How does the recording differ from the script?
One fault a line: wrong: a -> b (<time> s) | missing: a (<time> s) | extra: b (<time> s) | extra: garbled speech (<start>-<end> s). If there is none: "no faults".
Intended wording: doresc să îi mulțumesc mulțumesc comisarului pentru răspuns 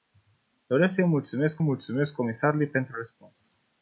no faults